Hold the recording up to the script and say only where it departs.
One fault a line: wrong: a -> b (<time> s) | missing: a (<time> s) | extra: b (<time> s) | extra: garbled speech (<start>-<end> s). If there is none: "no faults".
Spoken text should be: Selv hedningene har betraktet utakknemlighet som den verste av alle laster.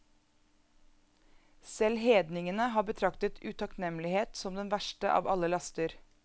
no faults